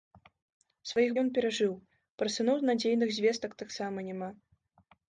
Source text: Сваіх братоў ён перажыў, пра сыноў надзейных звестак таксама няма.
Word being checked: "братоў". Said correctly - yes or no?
no